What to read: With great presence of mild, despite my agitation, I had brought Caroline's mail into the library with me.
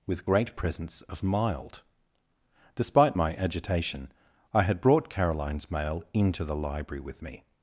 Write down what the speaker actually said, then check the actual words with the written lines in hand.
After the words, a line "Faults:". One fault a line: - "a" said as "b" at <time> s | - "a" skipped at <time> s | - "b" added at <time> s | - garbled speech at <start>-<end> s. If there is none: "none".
With great presence of mild, despite my agitation, I had brought Caroline's mail into the library with me.
Faults:
none